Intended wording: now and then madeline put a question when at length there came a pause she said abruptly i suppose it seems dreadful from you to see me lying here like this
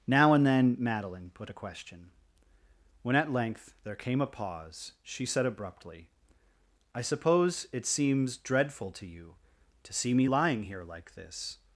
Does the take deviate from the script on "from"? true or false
true